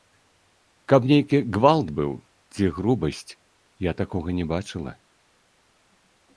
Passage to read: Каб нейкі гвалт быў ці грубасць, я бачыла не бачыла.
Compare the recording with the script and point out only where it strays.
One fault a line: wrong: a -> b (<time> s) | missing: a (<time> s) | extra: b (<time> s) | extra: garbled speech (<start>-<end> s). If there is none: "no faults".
wrong: бачыла -> такога (4.0 s)